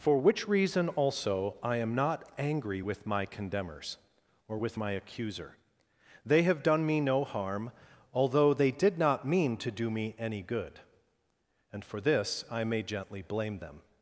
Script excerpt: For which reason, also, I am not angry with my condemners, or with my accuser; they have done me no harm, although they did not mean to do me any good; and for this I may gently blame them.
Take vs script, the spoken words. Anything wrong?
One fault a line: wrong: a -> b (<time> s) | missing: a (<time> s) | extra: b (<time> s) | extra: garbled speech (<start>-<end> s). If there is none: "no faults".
no faults